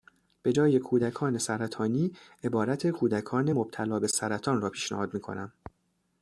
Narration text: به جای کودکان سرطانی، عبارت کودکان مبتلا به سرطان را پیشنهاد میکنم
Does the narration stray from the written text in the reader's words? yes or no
no